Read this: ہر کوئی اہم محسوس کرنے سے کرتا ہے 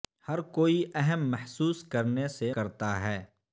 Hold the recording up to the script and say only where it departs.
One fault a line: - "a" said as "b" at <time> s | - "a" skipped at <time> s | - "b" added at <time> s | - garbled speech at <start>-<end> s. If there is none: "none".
none